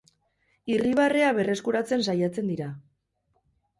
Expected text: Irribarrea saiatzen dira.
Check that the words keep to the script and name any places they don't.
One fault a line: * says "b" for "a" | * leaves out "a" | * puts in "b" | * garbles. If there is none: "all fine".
* puts in "berreskuratzen"